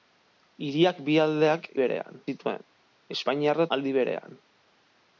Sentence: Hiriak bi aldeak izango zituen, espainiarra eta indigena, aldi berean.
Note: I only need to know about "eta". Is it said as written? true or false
false